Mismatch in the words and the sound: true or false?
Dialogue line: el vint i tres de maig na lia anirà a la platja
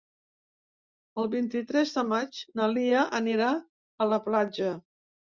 false